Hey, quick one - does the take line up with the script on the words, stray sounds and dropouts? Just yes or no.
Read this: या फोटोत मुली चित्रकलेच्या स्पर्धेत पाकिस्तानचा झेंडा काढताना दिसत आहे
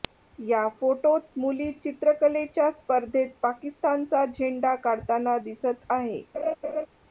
no